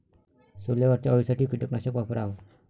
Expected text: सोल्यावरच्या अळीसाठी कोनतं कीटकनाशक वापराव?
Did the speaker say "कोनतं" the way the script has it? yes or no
no